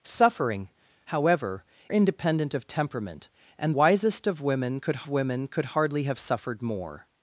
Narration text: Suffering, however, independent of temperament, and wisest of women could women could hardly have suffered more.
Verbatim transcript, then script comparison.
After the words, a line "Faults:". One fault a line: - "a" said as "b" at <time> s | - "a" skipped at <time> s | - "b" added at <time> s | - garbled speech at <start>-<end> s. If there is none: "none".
Suffering, however, independent of temperament, and wisest of women could women could hardly have suffered more.
Faults:
none